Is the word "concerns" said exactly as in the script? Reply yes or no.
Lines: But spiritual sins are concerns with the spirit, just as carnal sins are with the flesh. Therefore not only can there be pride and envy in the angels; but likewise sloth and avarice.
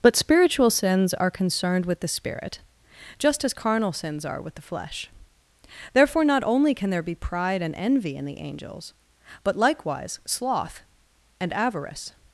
no